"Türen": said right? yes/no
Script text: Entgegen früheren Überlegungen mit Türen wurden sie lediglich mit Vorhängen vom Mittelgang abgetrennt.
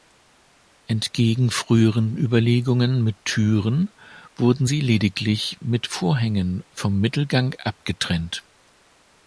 yes